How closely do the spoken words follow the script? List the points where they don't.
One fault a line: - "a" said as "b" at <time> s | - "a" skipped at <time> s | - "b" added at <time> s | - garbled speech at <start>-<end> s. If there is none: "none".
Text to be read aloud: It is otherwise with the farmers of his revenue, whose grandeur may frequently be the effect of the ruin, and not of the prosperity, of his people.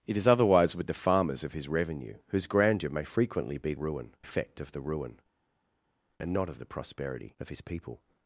- "the" said as "ruin" at 3.7 s